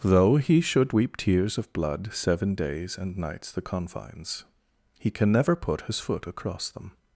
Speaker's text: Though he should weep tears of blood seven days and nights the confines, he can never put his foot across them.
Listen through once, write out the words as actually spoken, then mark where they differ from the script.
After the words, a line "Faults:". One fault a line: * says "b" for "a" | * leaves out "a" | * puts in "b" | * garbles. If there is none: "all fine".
Though he should weep tears of blood seven days and nights the confines, he can never put his foot across them.
Faults:
all fine